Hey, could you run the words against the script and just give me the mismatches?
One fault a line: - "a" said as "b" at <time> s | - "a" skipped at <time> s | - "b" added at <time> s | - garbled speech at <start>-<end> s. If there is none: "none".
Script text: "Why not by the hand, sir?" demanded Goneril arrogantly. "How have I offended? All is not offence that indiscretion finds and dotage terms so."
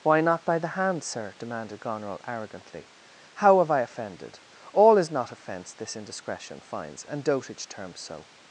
- "that" said as "this" at 5.7 s